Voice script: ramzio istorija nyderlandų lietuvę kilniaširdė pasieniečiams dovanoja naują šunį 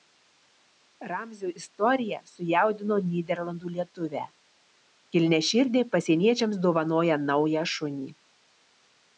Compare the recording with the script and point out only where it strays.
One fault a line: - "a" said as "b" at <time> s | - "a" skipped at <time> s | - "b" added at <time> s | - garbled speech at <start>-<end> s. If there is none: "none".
- "sujaudino" added at 2.3 s